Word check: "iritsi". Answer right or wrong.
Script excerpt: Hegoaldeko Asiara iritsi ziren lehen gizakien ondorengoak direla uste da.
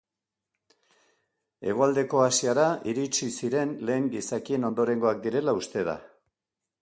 right